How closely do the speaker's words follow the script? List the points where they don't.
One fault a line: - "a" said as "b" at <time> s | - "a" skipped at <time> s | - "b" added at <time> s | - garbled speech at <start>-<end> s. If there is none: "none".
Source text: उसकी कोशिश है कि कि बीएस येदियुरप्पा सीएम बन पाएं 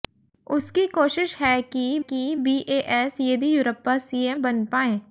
none